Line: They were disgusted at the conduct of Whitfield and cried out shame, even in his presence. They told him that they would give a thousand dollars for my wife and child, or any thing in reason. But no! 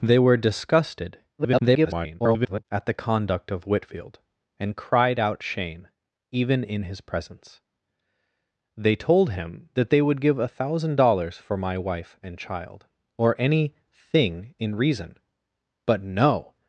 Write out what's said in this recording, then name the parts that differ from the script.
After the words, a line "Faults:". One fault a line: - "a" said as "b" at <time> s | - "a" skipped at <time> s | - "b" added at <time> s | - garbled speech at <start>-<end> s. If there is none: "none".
They were disgusted [garbled] at the conduct of Whitfield and cried out shame, even in his presence. They told him that they would give a thousand dollars for my wife and child, or any thing in reason. But no!
Faults:
- garbled speech at 1.4-2.7 s